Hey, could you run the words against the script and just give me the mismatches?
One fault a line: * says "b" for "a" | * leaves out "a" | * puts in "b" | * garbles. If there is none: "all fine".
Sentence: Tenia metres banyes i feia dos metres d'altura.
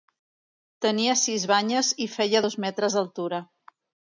* says "sis" for "metres"